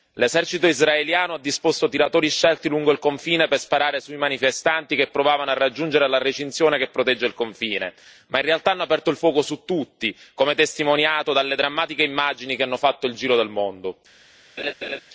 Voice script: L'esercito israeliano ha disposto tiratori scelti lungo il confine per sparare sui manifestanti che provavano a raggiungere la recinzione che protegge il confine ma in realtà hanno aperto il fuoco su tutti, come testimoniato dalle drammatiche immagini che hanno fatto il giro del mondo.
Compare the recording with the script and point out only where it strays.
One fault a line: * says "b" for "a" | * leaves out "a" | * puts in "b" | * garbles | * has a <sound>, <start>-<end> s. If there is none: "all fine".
* has a laugh, 14.6-15.0 s